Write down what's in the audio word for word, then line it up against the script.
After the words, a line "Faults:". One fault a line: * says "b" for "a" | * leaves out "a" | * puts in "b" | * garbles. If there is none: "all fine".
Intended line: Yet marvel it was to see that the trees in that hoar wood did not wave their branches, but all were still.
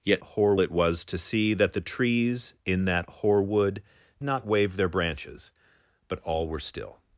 Yet hoar it was to see that the trees in that hoar wood not wave their branches, but all were still.
Faults:
* says "hoar" for "marvel"
* leaves out "did"